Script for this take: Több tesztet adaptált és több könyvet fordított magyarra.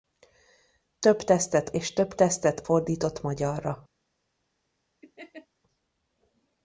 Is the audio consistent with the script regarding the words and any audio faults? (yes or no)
no